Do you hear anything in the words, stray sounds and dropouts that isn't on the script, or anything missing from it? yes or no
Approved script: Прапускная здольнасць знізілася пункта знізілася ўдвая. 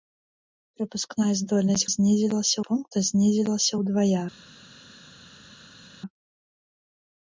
no